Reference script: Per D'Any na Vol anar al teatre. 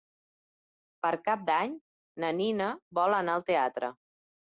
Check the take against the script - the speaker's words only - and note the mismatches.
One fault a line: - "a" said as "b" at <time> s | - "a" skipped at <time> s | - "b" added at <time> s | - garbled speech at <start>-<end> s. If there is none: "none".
- "Cap" added at 1.3 s
- "Nina" added at 2.4 s